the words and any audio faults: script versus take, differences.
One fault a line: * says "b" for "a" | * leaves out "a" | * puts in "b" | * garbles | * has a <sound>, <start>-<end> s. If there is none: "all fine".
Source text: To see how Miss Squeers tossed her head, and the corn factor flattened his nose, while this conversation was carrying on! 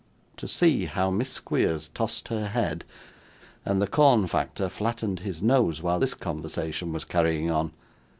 all fine